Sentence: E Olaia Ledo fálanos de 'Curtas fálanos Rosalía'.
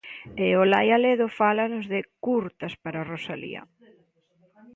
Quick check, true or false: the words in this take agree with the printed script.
false